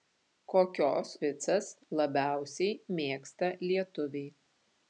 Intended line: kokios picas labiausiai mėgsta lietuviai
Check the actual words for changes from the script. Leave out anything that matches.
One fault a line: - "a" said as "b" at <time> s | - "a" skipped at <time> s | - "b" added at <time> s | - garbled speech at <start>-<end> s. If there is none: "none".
none